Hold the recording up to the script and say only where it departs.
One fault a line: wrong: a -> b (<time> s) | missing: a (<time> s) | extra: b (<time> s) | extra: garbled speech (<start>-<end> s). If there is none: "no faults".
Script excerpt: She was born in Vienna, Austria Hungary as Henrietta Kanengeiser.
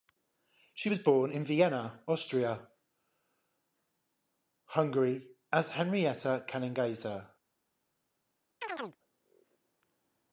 no faults